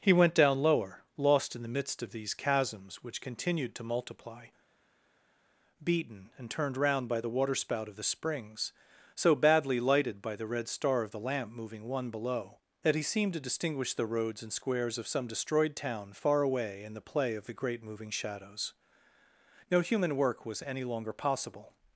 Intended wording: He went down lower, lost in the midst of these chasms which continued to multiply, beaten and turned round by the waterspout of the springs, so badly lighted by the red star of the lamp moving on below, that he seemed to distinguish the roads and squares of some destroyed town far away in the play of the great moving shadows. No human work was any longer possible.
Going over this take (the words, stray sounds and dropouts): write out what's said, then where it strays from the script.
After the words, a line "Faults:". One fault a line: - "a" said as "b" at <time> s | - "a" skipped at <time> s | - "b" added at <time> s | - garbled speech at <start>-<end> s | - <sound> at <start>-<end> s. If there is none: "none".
He went down lower, lost in the midst of these chasms which continued to multiply, beaten and turned round by the waterspout of the springs, so badly lighted by the red star of the lamp moving one below, that he seemed to distinguish the roads and squares of some destroyed town far away in the play of the great moving shadows. No human work was any longer possible.
Faults:
- "on" said as "one" at 11.9 s